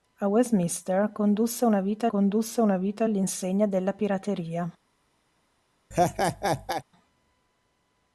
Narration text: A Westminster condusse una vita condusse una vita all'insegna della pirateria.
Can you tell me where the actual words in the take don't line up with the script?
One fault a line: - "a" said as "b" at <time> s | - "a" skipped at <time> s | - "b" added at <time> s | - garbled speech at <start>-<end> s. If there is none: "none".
none